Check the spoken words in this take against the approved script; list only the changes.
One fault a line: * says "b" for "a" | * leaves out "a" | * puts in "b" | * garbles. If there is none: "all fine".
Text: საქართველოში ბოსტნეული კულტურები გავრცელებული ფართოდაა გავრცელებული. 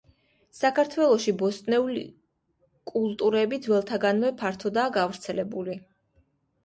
* says "ძველთაგანვე" for "გავრცელებული"